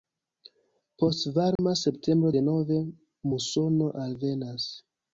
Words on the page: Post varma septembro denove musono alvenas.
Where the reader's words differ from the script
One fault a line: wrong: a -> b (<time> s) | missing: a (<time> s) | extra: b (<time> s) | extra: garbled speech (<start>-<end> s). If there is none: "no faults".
no faults